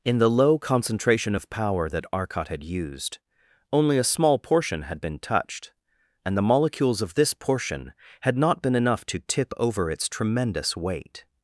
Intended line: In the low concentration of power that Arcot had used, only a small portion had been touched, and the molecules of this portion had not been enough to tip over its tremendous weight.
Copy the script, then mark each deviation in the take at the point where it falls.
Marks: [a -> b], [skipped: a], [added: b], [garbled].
In the low concentration of power that Arcot had used, only a small portion had been touched, and the molecules of this portion had not been enough to tip over its tremendous weight.